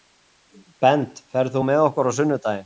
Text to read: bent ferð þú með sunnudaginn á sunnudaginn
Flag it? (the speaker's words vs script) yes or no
yes